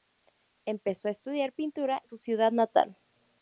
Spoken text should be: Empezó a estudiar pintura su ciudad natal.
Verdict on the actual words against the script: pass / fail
pass